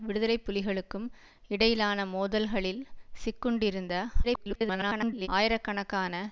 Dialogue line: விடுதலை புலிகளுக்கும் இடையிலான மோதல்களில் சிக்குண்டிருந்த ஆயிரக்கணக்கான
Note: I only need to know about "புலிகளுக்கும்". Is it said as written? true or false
true